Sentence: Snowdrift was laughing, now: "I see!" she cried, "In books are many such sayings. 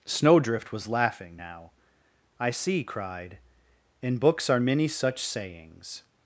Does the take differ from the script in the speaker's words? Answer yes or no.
yes